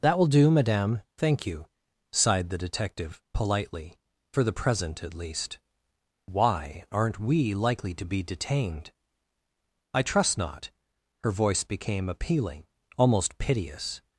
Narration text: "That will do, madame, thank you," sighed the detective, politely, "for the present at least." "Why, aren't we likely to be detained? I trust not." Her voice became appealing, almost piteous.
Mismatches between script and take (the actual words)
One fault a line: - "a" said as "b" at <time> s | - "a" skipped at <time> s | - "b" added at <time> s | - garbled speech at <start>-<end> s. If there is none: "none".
none